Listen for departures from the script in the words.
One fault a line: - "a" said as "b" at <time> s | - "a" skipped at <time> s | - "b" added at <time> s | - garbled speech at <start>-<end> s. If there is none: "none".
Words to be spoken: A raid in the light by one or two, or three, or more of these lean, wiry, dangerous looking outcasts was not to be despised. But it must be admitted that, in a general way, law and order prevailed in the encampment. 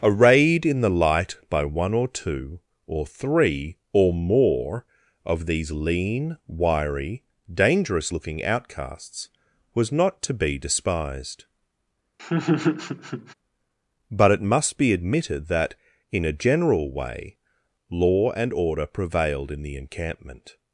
none